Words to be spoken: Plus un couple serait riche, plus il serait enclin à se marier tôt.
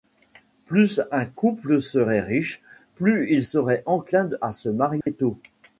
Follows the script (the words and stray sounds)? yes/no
no